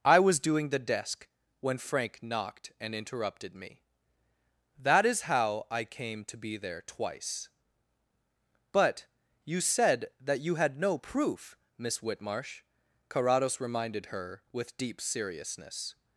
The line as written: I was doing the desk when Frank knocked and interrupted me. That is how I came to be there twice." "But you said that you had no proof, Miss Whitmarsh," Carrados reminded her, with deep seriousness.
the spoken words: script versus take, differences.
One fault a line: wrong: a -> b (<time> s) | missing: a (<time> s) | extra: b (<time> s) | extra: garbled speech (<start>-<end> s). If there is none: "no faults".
no faults